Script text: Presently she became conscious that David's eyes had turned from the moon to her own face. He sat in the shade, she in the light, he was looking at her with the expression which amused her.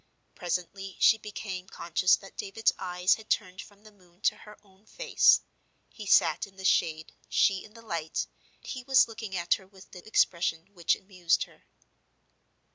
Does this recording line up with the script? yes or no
yes